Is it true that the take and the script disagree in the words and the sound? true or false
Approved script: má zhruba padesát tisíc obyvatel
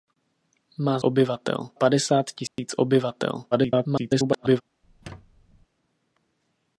true